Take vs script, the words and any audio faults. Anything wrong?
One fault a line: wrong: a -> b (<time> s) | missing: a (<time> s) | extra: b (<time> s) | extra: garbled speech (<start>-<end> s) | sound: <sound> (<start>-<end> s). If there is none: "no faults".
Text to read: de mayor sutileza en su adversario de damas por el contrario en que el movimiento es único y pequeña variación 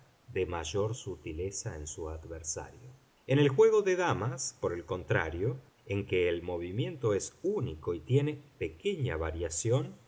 extra: en el juego (3.3 s)
extra: tiene (8.0 s)